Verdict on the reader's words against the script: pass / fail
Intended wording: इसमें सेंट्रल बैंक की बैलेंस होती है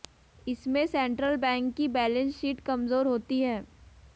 fail